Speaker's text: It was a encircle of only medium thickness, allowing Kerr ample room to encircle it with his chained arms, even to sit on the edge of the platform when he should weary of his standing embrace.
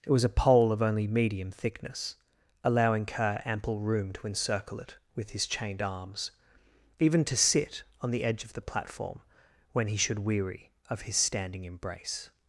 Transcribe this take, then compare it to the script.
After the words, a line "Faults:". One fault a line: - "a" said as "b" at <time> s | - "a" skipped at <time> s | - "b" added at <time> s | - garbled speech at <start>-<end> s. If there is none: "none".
It was a pole of only medium thickness, allowing Kerr ample room to encircle it with his chained arms, even to sit on the edge of the platform when he should weary of his standing embrace.
Faults:
- "encircle" said as "pole" at 0.3 s